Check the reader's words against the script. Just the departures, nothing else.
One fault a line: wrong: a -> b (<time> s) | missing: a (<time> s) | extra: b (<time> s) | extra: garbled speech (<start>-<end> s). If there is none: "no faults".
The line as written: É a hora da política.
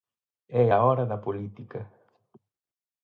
no faults